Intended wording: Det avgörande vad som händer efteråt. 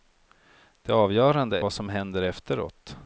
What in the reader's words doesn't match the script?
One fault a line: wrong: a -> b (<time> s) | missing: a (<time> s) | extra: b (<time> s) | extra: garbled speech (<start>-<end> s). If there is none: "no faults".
no faults